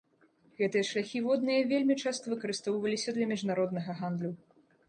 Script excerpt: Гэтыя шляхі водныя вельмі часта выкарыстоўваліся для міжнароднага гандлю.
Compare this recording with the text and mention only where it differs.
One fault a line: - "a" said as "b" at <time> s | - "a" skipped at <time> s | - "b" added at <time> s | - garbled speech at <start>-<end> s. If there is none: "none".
none